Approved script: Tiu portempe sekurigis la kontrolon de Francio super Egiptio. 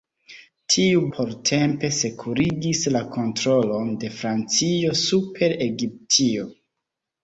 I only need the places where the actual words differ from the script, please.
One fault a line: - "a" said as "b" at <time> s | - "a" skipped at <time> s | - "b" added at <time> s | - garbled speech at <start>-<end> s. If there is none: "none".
none